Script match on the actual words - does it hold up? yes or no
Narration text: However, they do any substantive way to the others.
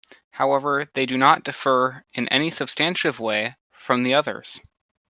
no